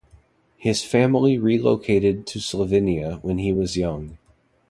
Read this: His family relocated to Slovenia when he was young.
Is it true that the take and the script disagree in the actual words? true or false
false